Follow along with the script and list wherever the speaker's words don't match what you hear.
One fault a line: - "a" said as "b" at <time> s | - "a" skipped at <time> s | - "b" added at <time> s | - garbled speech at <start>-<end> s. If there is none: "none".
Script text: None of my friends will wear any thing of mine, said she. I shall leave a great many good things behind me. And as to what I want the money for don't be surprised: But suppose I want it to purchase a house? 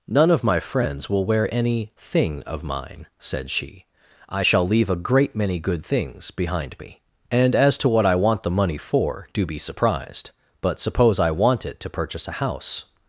- "don't" said as "do" at 9.3 s